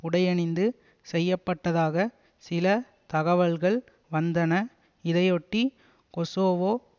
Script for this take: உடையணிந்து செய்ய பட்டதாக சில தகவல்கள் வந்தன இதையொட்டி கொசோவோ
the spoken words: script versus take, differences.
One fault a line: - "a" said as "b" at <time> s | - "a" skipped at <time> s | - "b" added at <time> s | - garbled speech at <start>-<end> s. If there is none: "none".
none